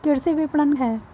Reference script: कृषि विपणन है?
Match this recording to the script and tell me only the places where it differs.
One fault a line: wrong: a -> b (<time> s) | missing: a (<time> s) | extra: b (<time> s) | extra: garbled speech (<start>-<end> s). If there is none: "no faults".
no faults